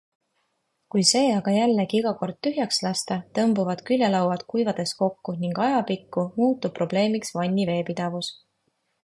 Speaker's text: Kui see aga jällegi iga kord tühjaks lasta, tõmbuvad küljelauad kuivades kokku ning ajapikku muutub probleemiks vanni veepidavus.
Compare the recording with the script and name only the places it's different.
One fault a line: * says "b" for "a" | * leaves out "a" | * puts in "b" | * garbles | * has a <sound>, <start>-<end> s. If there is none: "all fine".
all fine